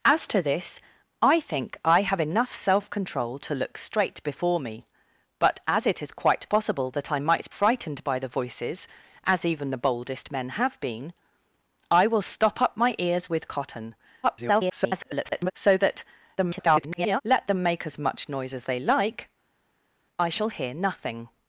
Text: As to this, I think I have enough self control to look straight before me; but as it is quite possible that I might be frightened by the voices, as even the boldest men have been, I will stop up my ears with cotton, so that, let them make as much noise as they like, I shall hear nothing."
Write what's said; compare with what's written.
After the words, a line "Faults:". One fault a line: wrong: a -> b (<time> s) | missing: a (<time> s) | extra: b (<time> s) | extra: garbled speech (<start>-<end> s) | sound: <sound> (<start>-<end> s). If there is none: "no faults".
As to this, I think I have enough self control to look straight before me; but as it is quite possible that I might frightened by the voices, as even the boldest men have been, I will stop up my ears with cotton, [garbled] so that, [garbled] let them make as much noise as they like, I shall hear nothing."
Faults:
missing: be (7.5 s)
extra: garbled speech (14.2-15.5 s)
extra: garbled speech (16.4-17.2 s)